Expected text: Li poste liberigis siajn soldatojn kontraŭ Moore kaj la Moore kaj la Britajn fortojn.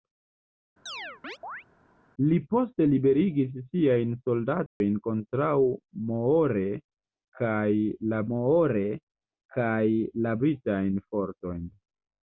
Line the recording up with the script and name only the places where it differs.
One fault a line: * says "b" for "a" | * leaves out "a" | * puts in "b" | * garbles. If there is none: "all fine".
all fine